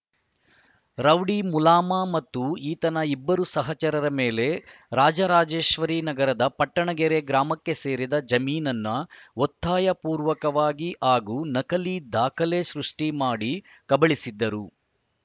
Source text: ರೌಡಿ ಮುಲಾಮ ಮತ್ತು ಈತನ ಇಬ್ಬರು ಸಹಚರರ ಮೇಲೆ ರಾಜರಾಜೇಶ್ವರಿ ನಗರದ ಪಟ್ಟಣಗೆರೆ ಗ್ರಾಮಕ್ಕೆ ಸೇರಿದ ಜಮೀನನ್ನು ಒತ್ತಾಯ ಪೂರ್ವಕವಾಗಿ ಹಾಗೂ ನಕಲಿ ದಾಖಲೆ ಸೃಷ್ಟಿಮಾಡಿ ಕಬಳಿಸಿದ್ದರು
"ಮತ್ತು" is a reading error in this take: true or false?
false